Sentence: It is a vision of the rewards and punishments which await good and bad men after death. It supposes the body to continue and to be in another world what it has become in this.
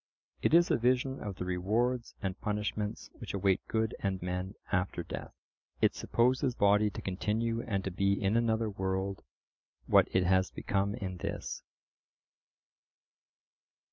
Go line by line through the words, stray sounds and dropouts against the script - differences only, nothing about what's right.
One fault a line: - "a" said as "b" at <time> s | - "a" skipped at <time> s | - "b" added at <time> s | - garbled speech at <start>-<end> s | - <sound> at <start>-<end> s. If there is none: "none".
- "bad" skipped at 4.2 s
- "the" skipped at 6.6 s